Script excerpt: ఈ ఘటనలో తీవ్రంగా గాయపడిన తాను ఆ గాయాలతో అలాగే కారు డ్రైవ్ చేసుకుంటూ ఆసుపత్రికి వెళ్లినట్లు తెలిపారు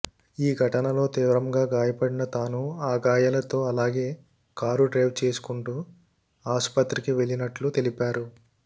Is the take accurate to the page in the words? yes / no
yes